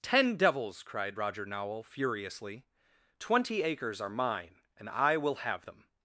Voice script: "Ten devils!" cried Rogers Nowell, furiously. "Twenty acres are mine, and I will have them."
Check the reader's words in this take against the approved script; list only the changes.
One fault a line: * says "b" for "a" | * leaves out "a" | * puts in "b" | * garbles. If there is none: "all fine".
* says "Roger" for "Rogers"